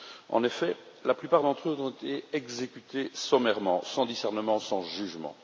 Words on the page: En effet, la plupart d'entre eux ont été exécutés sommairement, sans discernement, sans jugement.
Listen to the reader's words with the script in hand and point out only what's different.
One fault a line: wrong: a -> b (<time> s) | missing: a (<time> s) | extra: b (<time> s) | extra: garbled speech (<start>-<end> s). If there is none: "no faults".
no faults